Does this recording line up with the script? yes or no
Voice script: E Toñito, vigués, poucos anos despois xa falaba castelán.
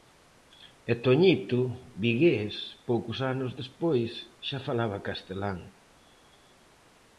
yes